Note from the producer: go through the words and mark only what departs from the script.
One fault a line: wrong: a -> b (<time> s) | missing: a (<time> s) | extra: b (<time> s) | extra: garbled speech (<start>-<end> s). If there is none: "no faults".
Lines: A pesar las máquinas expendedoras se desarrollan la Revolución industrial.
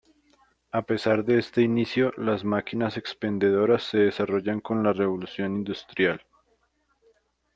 extra: de este inicio (1.2 s)
extra: con (4.6 s)